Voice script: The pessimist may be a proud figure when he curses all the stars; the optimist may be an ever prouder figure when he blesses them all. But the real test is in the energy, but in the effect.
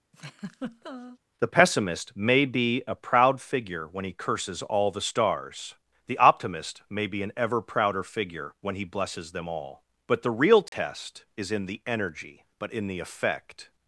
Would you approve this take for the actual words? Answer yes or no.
yes